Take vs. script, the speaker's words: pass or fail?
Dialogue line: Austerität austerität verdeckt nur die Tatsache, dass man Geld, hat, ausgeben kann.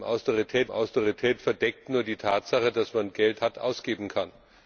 pass